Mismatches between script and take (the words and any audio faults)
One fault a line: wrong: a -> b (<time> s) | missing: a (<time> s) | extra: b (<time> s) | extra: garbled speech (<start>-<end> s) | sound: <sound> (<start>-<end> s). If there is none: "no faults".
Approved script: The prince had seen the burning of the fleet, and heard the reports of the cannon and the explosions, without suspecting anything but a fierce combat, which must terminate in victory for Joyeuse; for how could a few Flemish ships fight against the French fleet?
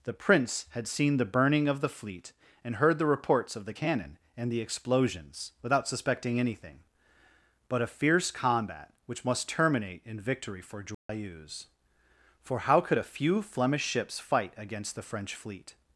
sound: dropout (10.9-11.1 s)